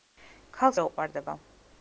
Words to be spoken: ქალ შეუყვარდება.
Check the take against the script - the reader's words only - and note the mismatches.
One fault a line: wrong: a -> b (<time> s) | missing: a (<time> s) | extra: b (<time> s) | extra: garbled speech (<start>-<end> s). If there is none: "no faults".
no faults